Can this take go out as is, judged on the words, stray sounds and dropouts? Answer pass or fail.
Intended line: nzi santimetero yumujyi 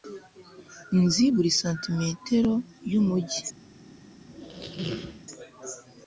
fail